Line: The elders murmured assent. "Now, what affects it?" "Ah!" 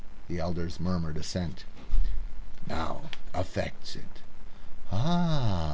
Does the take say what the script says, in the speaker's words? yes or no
no